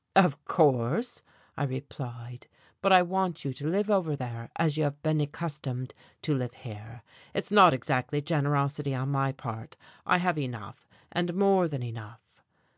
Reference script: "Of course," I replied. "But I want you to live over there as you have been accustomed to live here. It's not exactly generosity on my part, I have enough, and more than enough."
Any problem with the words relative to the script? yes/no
no